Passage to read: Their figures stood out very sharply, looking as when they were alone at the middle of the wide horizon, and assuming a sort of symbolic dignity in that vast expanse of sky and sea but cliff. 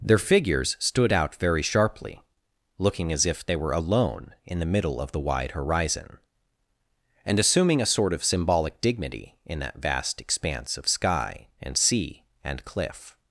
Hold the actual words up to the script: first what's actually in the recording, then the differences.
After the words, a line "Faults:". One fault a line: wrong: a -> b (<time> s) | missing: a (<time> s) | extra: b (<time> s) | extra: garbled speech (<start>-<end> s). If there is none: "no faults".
Their figures stood out very sharply, looking as if they were alone in the middle of the wide horizon, and assuming a sort of symbolic dignity in that vast expanse of sky and sea and cliff.
Faults:
wrong: when -> if (3.2 s)
wrong: at -> in (4.5 s)
wrong: but -> and (12.4 s)